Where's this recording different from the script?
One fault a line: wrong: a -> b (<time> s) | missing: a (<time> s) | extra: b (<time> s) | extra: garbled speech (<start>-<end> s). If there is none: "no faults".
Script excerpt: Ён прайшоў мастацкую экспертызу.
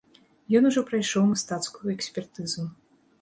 extra: ужо (0.7 s)